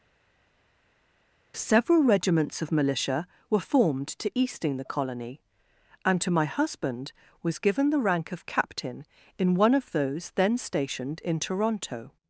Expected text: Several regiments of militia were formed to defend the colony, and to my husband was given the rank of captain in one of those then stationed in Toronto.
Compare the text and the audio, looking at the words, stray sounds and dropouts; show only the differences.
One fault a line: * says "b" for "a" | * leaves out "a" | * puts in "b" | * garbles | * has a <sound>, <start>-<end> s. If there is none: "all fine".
* says "easting" for "defend"